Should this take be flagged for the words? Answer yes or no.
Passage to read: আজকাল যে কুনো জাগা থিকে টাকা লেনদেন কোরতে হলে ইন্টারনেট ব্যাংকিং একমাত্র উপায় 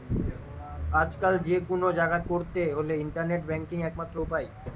yes